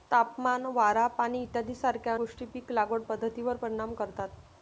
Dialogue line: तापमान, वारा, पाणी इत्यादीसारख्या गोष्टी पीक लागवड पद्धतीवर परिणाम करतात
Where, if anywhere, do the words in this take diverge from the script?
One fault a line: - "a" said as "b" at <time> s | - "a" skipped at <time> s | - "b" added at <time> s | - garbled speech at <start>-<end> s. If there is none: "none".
none